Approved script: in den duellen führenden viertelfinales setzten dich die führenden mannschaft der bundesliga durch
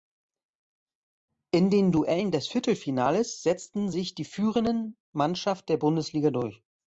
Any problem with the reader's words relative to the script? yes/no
yes